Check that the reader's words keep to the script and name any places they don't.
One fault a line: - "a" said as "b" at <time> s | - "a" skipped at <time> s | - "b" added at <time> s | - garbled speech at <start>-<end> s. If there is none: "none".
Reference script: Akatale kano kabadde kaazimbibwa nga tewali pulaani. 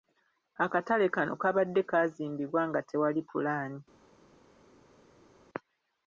none